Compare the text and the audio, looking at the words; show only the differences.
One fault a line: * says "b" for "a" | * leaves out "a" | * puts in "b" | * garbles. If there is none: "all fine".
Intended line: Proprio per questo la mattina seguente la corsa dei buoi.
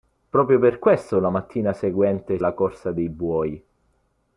all fine